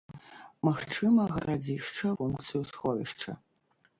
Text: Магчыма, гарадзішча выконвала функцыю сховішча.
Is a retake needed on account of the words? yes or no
yes